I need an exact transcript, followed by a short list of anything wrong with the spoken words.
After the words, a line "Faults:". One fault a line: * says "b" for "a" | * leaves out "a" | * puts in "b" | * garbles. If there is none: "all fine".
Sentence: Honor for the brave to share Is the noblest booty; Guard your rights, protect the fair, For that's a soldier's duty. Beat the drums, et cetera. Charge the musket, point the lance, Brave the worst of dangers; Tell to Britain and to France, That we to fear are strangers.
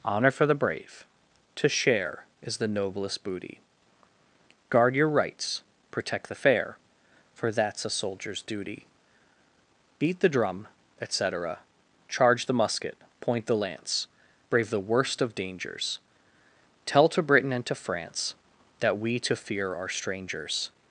Honor for the brave to share Is the noblest booty; Guard your rights, protect the fair, For that's a soldier's duty. Beat the drum, et cetera. Charge the musket, point the lance, Brave the worst of dangers; Tell to Britain and to France, That we to fear are strangers.
Faults:
* says "drum" for "drums"